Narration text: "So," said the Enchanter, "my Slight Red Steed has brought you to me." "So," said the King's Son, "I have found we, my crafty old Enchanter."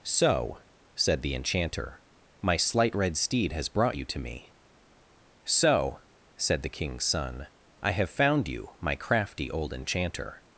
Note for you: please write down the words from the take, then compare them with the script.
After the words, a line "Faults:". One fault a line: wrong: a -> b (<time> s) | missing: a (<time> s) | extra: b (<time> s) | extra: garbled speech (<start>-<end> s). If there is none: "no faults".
"So," said the Enchanter, "my Slight Red Steed has brought you to me." "So," said the King's Son, "I have found you, my crafty old Enchanter."
Faults:
wrong: we -> you (8.5 s)